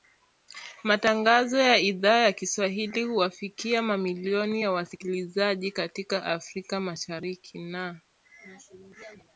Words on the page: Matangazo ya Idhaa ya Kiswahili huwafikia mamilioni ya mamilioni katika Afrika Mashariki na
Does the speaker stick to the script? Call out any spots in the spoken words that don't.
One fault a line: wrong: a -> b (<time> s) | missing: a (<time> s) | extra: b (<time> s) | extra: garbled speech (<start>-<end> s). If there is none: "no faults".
wrong: mamilioni -> wasikilizaji (4.7 s)